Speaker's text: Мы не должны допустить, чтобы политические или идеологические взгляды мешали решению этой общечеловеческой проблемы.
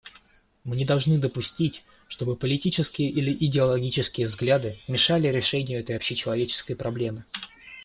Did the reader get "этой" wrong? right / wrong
right